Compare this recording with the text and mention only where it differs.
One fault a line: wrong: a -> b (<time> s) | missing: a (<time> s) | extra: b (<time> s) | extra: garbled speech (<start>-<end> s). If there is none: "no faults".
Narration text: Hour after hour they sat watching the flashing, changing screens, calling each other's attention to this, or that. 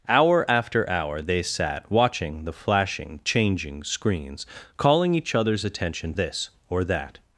missing: to (6.1 s)